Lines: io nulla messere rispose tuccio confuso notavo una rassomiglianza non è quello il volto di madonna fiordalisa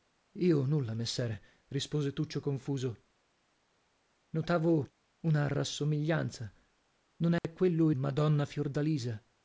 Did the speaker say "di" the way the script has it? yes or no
no